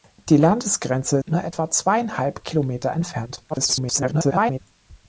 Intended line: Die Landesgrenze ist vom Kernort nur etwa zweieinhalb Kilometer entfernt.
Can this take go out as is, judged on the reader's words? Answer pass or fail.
fail